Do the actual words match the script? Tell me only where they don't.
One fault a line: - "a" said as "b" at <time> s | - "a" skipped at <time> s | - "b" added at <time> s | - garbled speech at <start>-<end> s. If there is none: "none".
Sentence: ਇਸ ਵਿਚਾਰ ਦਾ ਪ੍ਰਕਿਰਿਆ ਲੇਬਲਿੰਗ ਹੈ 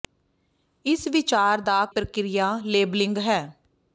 none